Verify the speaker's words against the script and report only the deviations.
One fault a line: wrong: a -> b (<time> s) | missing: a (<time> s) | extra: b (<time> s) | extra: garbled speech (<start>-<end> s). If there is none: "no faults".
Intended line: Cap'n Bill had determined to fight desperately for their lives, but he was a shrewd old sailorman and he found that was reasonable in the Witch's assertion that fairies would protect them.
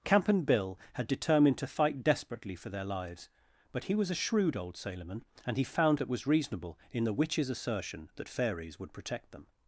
no faults